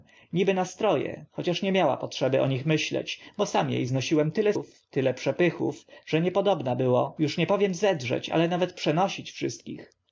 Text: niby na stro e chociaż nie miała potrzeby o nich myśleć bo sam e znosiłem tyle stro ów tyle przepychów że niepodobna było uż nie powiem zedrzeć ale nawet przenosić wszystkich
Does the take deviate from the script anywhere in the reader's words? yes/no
yes